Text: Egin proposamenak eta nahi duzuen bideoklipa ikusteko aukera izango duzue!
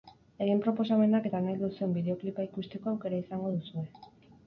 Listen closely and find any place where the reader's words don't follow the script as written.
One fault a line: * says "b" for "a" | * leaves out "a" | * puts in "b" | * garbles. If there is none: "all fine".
all fine